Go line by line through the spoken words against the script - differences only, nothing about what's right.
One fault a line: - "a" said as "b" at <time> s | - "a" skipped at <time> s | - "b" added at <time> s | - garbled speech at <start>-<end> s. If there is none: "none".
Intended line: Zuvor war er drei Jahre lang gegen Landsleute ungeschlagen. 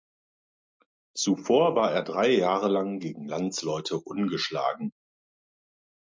none